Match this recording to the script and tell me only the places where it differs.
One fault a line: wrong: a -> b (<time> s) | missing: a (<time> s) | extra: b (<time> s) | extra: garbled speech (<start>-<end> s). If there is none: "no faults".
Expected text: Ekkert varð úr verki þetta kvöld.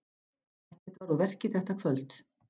no faults